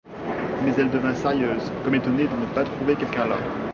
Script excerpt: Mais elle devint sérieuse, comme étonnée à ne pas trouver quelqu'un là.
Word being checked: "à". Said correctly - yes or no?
no